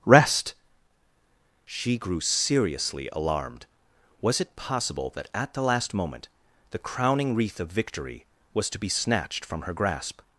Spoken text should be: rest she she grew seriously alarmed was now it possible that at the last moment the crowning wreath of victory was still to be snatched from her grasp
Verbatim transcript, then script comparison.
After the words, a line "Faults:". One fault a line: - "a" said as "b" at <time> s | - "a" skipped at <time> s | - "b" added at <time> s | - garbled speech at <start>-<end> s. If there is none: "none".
rest she grew seriously alarmed was it possible that at the last moment the crowning wreath of victory was to be snatched from her grasp
Faults:
- "she" skipped at 2.0 s
- "now" skipped at 4.4 s
- "still" skipped at 8.7 s